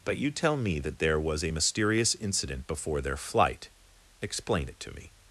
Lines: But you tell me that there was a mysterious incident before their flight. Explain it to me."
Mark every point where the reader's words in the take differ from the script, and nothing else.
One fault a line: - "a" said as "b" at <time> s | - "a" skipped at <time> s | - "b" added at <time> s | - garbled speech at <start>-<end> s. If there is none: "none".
none